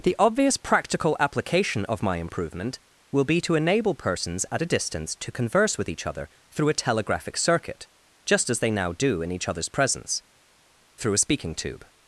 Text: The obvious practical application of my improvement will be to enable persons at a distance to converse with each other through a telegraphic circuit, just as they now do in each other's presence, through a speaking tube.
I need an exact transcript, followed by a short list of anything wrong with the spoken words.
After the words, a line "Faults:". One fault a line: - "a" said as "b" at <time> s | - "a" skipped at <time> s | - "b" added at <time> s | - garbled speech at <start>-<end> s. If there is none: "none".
The obvious practical application of my improvement will be to enable persons at a distance to converse with each other through a telegraphic circuit, just as they now do in each other's presence, through a speaking tube.
Faults:
none